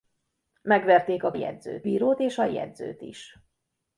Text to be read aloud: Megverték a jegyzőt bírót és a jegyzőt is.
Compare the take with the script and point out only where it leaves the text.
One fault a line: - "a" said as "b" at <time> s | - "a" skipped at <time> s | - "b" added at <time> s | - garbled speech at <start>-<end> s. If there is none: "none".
none